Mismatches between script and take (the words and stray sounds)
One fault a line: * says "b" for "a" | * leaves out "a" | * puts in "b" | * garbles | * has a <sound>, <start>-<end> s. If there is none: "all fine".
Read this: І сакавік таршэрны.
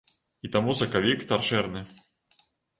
* puts in "таму"